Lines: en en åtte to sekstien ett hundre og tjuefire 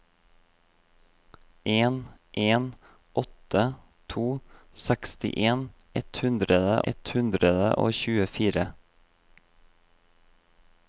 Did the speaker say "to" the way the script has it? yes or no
yes